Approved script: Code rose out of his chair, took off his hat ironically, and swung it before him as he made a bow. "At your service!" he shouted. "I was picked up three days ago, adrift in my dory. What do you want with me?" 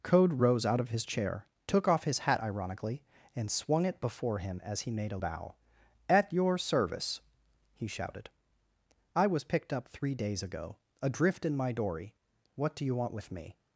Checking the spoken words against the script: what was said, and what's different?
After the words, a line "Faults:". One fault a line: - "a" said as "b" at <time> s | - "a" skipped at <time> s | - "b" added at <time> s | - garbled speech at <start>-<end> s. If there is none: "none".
Code rose out of his chair, took off his hat ironically, and swung it before him as he made a bow. "At your service!" he shouted. "I was picked up three days ago, adrift in my dory. What do you want with me?"
Faults:
none